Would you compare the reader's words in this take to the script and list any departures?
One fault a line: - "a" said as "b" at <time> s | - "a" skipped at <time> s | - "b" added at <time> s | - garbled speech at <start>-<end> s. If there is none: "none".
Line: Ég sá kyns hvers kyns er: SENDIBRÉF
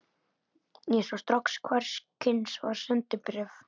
- "kyns" said as "strax" at 1.2 s
- "er" said as "var" at 2.7 s